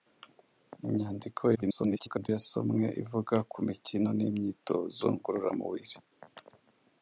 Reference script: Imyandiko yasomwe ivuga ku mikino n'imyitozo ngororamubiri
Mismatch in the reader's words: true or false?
true